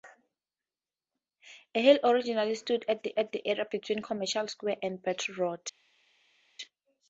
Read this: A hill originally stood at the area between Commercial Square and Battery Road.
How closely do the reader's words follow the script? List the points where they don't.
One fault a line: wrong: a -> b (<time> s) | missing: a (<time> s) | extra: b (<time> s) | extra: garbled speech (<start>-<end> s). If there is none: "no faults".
extra: at the (3.2 s)